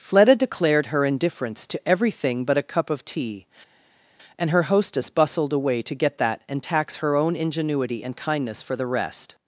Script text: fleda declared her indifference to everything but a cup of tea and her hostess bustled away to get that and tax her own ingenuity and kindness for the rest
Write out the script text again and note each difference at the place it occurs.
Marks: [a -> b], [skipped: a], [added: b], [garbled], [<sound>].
fleda declared her indifference to everything but a cup of tea and her hostess bustled away to get that and tax her own ingenuity and kindness for the rest